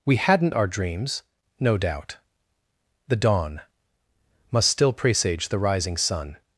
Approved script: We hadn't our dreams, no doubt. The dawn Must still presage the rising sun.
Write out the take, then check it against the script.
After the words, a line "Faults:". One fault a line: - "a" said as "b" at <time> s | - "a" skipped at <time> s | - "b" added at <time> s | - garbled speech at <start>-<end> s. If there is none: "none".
We hadn't our dreams, no doubt. The dawn Must still presage the rising sun.
Faults:
none